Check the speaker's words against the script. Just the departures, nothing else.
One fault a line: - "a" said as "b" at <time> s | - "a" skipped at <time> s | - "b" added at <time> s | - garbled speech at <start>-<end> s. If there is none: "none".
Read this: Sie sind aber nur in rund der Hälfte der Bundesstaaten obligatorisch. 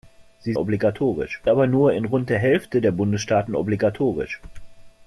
- "sind" said as "obligatorisch" at 0.6 s